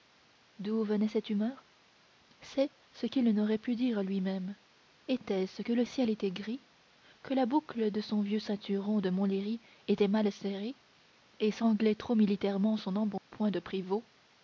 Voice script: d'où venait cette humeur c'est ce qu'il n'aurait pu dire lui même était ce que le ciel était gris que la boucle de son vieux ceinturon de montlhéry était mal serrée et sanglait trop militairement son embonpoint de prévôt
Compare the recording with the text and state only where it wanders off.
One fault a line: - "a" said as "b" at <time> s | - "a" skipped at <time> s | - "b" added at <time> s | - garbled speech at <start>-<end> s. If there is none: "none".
none